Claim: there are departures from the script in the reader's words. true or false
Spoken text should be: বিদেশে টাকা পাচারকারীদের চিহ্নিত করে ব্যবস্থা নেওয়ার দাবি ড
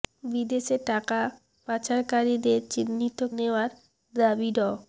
true